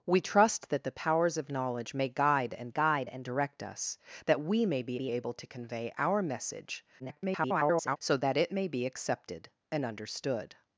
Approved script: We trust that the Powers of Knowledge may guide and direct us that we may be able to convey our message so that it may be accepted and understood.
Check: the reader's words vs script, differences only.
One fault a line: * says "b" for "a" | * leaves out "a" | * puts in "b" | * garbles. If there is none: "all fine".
* puts in "guide and"
* puts in "be"
* garbles